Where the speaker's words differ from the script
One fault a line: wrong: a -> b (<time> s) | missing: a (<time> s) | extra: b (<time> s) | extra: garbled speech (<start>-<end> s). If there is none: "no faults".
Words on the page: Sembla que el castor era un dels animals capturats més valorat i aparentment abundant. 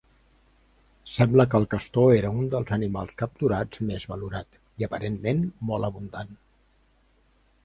extra: molt (5.7 s)